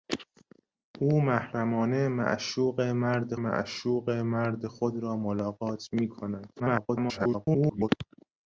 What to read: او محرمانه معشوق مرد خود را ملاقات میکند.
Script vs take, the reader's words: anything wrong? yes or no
yes